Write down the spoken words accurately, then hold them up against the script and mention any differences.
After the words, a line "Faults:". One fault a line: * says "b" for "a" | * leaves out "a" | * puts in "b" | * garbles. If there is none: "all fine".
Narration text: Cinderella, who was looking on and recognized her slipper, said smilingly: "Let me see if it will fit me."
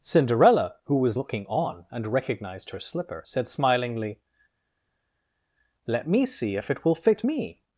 Cinderella, who was looking on and recognized her slipper, said smilingly: "Let me see if it will fit me."
Faults:
all fine